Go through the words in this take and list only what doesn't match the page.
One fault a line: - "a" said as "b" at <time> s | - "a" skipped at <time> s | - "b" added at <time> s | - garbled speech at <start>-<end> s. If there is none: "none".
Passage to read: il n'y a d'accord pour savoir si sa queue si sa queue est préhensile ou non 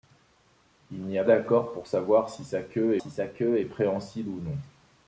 none